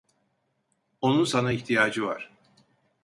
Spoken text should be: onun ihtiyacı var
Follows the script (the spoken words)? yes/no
no